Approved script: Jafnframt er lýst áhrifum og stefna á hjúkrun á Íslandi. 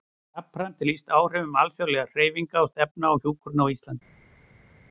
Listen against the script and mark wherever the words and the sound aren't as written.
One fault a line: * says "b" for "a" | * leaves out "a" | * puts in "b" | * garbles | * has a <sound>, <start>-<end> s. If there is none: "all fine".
* puts in "alþjóðlegra hreyfinga"